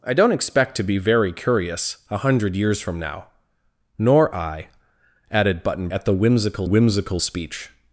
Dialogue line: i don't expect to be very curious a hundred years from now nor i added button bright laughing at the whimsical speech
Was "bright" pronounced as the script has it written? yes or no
no